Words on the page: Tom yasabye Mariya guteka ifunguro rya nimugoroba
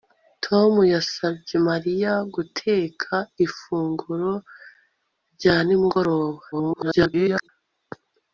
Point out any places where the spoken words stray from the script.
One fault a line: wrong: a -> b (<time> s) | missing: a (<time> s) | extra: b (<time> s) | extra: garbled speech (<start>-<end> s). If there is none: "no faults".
extra: garbled speech (6.5-7.5 s)